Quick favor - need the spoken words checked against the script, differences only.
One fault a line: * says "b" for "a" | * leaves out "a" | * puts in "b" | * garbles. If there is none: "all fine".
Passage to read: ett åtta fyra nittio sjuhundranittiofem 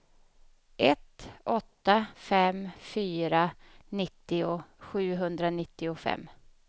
* puts in "fem"